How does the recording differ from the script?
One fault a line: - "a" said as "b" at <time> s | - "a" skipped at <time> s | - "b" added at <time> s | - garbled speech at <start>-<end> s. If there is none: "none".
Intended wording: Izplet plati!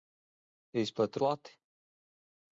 none